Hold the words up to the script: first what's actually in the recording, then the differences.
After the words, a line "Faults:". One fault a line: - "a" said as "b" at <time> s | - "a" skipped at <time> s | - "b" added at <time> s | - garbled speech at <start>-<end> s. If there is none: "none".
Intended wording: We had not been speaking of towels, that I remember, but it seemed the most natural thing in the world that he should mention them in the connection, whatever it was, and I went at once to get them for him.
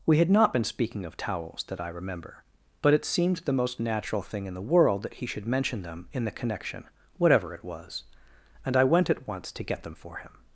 We had not been speaking of towels, that I remember, but it seemed the most natural thing in the world that he should mention them in the connection, whatever it was, and I went at once to get them for him.
Faults:
none